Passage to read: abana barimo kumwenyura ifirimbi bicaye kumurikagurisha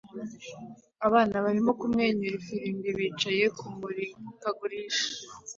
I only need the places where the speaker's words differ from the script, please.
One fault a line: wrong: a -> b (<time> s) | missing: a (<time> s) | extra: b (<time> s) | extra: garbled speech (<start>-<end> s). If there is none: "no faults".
no faults